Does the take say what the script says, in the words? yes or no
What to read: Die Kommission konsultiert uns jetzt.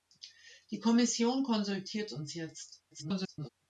no